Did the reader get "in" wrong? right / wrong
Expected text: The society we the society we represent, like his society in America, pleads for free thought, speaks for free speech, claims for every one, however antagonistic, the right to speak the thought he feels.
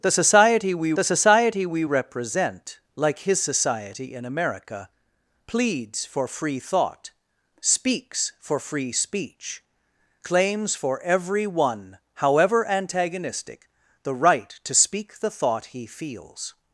right